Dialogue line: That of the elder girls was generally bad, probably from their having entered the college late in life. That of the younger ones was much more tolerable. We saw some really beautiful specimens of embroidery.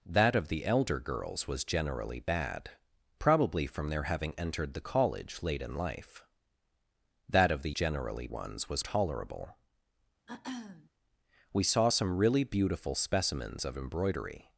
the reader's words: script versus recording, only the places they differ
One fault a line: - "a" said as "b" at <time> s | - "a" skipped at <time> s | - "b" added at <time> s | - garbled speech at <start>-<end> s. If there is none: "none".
- "younger" said as "generally" at 7.7 s
- "much more" skipped at 8.8 s